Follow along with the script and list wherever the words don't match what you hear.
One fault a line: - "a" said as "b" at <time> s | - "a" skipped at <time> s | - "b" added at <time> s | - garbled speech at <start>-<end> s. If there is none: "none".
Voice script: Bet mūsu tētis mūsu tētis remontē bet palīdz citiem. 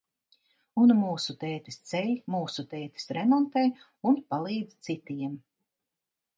- "Bet" said as "Un" at 0.8 s
- "ceļ" added at 1.9 s
- "bet" said as "un" at 4.1 s